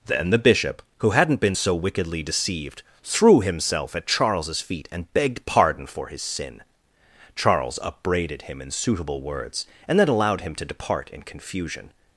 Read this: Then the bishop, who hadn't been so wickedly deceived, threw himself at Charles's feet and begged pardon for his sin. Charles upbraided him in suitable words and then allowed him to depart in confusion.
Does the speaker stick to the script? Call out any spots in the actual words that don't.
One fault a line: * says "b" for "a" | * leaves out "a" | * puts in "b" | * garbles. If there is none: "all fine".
all fine